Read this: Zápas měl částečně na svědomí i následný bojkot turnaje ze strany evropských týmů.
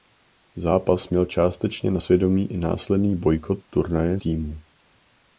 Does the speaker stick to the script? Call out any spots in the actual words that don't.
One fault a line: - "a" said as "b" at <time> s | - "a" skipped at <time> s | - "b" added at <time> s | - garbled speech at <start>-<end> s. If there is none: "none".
- "ze strany evropských" skipped at 4.2 s